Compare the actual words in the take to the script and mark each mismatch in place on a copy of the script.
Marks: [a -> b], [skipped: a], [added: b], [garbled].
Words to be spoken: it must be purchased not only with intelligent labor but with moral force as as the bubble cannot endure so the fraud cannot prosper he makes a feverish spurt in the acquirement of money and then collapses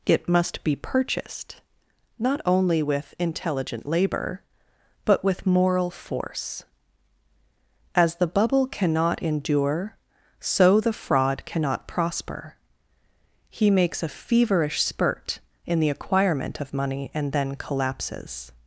it must be purchased not only with intelligent labor but with moral force as [skipped: as] the bubble cannot endure so the fraud cannot prosper he makes a feverish spurt in the acquirement of money and then collapses